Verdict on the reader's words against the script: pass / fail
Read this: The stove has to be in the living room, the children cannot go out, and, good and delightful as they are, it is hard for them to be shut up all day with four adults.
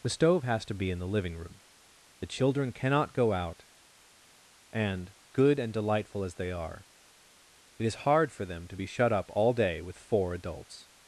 pass